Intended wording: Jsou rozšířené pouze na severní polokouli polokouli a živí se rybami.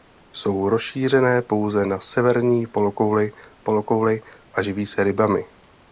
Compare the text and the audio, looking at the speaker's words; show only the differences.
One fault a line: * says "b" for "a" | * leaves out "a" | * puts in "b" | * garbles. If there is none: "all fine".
all fine